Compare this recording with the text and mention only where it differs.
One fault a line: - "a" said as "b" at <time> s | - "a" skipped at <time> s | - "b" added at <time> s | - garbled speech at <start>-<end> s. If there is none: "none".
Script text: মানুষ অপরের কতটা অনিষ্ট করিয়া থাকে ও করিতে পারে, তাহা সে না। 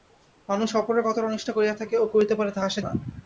none